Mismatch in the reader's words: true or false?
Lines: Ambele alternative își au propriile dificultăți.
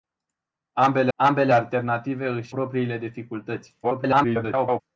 true